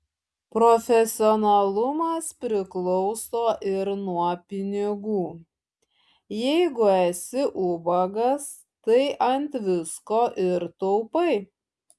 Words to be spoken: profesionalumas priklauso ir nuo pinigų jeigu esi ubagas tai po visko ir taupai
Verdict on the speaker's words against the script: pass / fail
fail